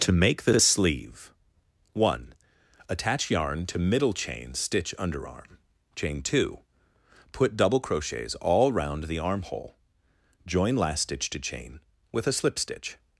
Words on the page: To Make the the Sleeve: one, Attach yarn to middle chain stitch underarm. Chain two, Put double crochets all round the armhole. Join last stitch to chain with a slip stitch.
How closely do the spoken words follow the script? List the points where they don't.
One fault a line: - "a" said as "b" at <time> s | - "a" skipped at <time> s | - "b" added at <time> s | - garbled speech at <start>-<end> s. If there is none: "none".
none